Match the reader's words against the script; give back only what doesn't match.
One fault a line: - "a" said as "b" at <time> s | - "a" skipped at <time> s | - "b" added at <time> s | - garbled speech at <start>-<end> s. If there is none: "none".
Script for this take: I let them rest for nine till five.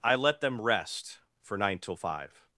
none